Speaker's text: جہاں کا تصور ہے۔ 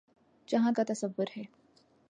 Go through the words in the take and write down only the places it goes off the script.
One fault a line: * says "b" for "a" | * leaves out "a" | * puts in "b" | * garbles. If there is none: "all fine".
all fine